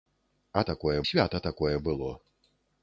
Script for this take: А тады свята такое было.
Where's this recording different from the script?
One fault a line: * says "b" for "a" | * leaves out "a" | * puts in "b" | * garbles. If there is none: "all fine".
* says "такое" for "тады"